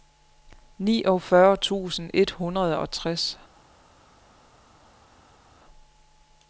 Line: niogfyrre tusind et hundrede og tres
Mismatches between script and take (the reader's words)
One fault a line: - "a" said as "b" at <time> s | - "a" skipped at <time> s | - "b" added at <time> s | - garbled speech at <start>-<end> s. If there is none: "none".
none